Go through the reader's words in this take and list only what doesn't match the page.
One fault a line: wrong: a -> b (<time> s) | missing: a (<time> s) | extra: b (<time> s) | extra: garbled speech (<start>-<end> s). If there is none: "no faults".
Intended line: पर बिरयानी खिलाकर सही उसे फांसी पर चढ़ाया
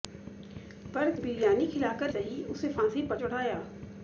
no faults